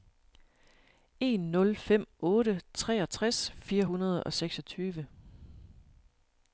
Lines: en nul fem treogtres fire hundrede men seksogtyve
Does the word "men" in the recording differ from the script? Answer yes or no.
yes